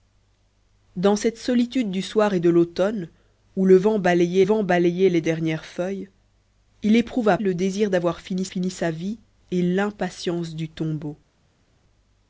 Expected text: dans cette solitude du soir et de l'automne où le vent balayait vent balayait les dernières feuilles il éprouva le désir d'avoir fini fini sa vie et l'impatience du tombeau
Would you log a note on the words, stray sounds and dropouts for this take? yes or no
no